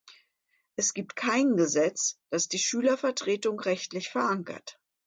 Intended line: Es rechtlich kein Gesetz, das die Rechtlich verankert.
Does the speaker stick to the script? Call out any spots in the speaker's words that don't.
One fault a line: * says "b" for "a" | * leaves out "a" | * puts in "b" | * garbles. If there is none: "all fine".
* says "gibt" for "rechtlich"
* puts in "Schülervertretung"